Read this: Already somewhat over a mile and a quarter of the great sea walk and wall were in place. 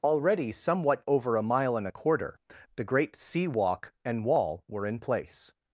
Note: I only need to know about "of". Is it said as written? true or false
false